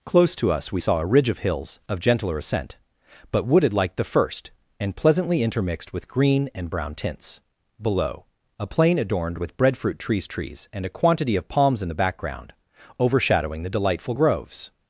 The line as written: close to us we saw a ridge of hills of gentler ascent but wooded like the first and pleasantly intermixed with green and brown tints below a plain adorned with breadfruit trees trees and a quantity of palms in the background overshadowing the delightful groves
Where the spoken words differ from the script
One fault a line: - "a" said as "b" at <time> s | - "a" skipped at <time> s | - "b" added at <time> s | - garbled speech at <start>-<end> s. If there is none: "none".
none